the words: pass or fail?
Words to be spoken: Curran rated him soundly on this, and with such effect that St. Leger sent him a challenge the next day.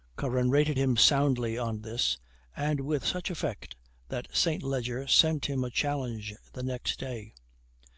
pass